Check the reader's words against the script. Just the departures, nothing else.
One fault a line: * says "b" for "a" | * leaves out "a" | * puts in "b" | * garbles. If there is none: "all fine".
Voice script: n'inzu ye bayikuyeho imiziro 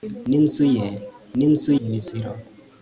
* says "n'inzu" for "bayikuyeho"